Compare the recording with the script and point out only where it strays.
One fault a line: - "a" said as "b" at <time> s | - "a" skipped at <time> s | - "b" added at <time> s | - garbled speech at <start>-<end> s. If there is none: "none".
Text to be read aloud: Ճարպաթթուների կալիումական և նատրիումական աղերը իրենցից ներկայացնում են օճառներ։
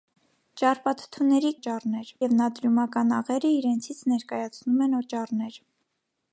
- "կալիումական" said as "օճառներ" at 1.6 s